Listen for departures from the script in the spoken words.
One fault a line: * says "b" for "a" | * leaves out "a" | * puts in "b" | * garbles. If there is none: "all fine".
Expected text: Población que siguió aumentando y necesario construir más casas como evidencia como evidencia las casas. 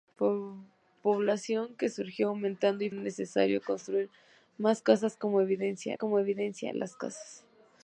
all fine